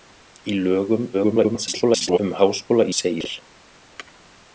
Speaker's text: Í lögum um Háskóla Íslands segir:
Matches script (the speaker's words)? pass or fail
fail